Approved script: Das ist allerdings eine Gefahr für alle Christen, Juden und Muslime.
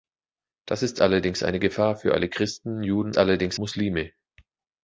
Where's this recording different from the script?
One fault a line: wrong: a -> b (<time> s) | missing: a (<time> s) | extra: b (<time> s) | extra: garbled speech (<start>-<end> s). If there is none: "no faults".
wrong: und -> allerdings (3.2 s)